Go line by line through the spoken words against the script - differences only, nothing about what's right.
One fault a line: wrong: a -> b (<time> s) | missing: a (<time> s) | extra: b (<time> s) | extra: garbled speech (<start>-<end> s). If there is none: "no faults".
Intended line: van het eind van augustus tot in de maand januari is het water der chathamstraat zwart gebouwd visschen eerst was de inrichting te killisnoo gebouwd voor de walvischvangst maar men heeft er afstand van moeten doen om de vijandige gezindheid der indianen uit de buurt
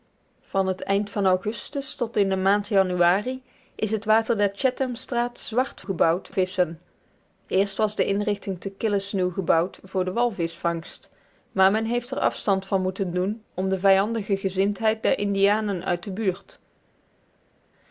no faults